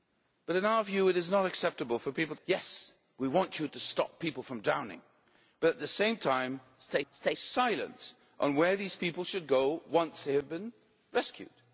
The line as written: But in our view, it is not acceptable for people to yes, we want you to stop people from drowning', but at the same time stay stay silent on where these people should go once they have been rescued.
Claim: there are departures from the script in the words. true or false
false